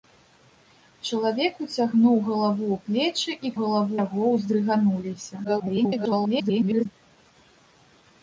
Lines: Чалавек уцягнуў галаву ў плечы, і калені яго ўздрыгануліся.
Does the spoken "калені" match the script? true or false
false